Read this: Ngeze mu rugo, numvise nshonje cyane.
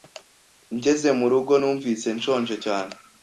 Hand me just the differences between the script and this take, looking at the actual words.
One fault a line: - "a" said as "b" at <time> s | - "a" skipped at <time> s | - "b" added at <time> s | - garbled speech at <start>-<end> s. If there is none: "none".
none